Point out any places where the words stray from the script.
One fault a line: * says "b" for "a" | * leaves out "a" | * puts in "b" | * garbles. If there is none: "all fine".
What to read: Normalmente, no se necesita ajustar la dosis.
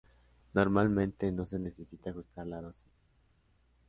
all fine